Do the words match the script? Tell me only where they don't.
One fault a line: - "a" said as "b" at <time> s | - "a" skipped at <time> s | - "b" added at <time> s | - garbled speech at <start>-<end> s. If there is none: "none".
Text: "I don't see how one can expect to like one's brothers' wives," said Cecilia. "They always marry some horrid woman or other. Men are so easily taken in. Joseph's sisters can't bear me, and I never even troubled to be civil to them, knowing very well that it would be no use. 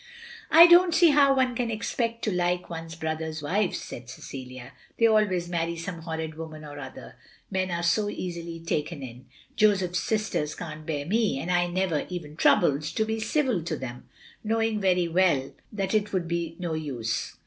none